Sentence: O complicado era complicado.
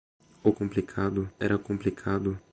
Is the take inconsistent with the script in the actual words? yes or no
no